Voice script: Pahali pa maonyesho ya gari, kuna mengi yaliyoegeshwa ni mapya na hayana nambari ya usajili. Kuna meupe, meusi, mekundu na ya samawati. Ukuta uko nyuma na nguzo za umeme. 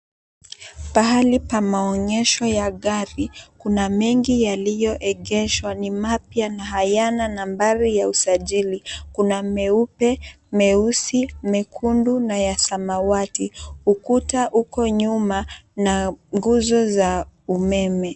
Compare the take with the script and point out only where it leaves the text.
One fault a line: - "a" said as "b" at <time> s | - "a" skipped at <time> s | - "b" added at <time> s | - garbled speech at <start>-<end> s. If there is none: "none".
none